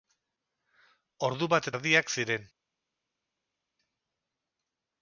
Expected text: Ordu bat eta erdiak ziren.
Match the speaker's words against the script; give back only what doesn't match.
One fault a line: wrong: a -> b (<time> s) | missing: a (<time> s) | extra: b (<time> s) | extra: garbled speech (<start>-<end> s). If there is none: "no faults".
missing: eta (1.7 s)